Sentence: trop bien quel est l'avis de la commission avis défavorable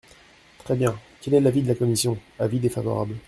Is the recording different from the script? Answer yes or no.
yes